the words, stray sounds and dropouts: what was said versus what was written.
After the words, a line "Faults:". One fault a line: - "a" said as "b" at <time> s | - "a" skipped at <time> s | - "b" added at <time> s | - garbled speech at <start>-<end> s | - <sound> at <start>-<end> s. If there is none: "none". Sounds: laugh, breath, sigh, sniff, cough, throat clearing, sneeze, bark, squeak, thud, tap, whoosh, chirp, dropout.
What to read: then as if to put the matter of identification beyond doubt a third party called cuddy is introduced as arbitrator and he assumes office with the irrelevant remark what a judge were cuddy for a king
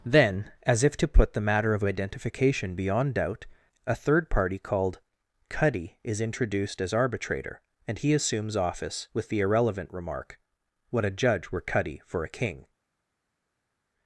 then as if to put the matter of identification beyond doubt a third party called cuddy is introduced as arbitrator and he assumes office with the irrelevant remark what a judge were cuddy for a king
Faults:
none